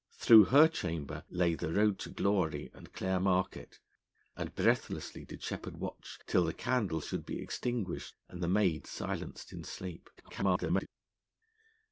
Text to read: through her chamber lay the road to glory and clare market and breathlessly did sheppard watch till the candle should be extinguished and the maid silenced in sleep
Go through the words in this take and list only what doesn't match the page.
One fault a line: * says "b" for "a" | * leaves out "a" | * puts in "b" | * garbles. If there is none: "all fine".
* garbles